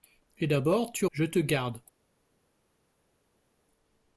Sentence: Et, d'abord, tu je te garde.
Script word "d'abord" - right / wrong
right